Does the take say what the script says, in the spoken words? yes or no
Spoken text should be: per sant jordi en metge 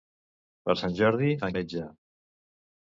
yes